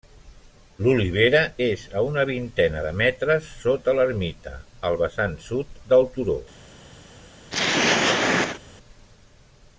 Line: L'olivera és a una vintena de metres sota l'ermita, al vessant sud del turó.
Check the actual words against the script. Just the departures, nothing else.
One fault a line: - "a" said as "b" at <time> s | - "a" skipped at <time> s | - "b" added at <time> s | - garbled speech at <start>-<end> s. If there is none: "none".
none